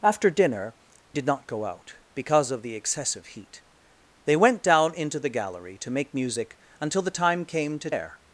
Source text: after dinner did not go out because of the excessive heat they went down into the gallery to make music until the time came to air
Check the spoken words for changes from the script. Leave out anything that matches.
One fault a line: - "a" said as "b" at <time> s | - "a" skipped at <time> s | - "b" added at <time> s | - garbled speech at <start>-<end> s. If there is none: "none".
none